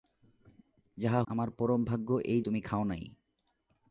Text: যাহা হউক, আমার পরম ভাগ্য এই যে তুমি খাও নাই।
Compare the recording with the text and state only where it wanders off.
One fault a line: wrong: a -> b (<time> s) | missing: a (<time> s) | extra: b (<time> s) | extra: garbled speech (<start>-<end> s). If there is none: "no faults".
missing: হউক (1.2 s)
missing: যে (2.4 s)